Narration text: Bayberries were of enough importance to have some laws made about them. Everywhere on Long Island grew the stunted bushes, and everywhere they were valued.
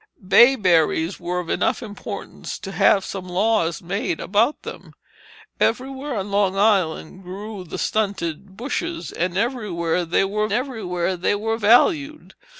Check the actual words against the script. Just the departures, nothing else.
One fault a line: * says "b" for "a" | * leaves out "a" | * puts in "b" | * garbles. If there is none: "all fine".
* puts in "everywhere they were"